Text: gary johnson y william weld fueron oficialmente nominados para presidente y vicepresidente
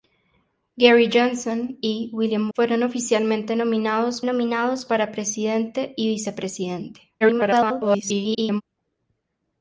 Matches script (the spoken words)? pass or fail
fail